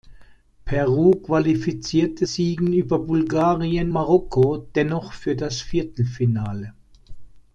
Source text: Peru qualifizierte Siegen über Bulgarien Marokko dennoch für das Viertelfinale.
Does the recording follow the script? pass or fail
pass